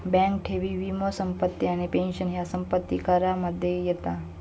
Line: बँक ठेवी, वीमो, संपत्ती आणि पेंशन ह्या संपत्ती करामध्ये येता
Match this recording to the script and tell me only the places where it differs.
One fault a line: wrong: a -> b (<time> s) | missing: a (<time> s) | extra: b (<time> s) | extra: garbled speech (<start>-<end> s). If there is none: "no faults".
no faults